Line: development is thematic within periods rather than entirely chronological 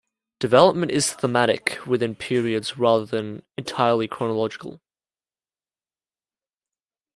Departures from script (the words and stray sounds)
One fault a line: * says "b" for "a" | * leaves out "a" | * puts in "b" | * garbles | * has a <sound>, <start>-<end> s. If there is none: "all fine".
all fine